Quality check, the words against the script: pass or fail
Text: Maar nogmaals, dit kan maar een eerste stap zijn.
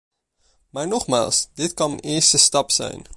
fail